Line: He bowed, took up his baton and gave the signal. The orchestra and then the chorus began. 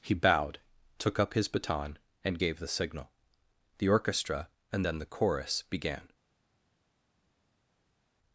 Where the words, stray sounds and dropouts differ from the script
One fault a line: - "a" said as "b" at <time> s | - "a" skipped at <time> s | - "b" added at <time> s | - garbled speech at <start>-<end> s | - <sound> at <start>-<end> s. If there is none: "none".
none